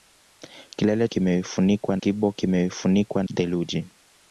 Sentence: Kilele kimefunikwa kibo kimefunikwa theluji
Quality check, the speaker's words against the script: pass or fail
pass